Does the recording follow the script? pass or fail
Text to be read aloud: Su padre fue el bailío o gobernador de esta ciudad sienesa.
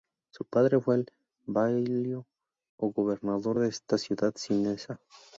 pass